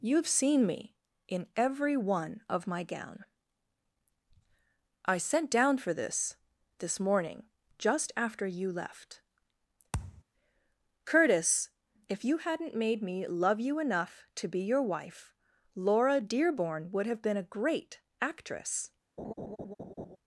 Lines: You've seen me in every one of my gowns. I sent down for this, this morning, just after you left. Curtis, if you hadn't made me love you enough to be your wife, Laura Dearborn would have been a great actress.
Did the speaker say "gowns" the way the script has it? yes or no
no